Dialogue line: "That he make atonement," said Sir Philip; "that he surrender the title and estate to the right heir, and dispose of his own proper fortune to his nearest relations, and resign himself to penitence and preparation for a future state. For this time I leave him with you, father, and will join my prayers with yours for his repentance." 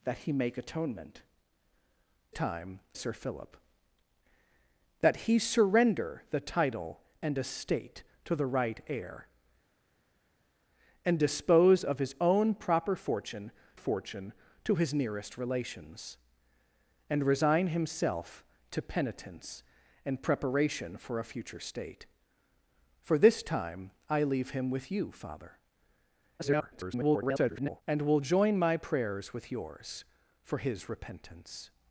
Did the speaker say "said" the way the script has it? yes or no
no